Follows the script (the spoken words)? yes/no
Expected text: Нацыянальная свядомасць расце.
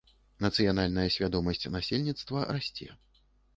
no